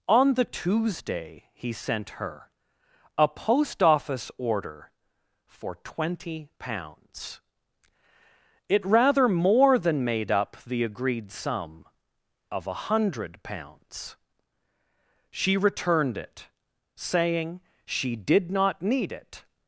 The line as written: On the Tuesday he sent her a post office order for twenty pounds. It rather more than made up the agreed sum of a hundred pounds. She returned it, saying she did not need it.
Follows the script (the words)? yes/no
yes